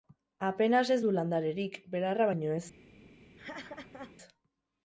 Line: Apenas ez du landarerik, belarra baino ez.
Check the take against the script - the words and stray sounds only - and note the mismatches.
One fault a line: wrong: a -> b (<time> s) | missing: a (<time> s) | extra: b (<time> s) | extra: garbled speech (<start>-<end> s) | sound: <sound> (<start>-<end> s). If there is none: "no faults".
sound: laugh (3.4-4.2 s)